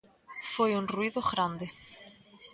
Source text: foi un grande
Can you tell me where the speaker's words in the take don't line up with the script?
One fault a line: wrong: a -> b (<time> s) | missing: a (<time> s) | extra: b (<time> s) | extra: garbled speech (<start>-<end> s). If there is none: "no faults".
extra: ruído (0.9 s)